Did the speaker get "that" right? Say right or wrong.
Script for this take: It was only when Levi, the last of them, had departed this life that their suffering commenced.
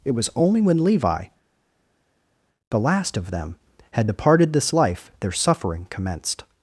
wrong